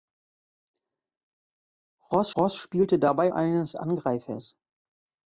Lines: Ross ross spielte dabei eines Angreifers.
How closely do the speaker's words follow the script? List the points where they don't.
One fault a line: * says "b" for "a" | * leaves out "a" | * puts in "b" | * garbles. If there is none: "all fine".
all fine